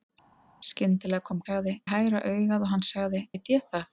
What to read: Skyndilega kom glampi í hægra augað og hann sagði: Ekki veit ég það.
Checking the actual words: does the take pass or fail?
fail